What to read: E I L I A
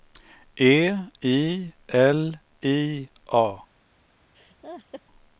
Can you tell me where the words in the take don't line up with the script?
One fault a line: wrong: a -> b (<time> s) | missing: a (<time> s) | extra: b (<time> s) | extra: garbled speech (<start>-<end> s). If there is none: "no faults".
no faults